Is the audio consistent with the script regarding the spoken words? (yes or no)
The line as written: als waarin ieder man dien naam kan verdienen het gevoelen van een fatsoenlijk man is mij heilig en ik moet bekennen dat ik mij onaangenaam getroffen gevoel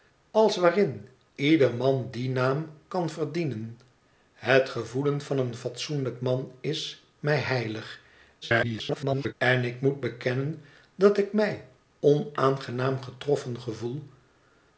no